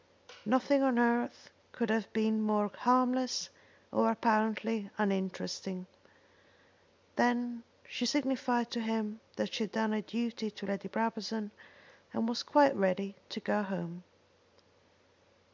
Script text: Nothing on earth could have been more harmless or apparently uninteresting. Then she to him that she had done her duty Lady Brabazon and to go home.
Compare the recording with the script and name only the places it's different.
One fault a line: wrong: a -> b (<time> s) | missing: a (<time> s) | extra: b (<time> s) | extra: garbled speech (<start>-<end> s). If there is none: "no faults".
extra: signified (8.0 s)
extra: to (10.5 s)
extra: was quite ready (12.3 s)